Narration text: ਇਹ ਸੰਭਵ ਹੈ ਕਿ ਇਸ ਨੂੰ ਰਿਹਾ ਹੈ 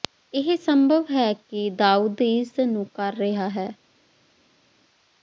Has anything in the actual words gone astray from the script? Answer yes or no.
yes